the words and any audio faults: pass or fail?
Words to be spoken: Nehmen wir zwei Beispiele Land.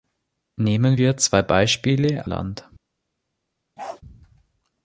fail